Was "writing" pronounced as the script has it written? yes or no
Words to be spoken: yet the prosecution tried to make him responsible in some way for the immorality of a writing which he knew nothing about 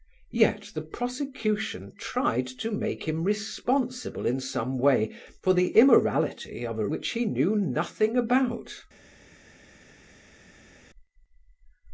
no